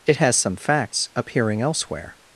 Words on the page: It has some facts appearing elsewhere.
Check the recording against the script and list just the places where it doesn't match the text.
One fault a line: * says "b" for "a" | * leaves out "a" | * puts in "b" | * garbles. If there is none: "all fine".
all fine